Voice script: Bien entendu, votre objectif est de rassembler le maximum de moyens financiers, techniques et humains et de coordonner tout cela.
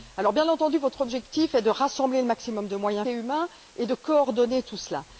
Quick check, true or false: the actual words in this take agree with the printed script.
false